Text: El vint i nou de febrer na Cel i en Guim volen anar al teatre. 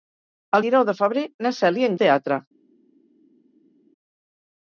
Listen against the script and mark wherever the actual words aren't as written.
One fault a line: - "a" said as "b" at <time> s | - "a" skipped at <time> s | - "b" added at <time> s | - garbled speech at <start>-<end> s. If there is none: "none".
- "vint" skipped at 0.6 s
- "Guim volen anar" skipped at 2.0 s